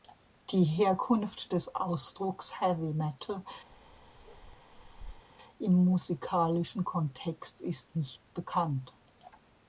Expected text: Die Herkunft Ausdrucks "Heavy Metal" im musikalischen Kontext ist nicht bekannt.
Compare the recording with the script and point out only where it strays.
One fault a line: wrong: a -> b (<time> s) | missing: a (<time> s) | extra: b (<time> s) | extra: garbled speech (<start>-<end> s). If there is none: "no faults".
extra: des (1.5 s)